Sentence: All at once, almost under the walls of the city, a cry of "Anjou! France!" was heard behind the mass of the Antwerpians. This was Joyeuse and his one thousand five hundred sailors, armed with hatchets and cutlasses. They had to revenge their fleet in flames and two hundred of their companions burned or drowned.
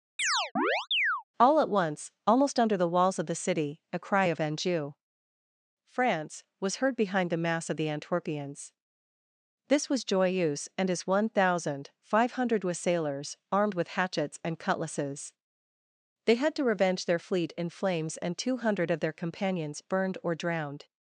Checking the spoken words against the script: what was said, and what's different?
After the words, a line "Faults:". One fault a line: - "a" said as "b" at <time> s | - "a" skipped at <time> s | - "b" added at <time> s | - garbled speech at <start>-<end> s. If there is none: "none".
All at once, almost under the walls of the city, a cry of "Anjou! France!" was heard behind the mass of the Antwerpians. This was Joyeuse and his one thousand five hundred sailors, armed with hatchets and cutlasses. They had to revenge their fleet in flames and two hundred of their companions burned or drowned.
Faults:
none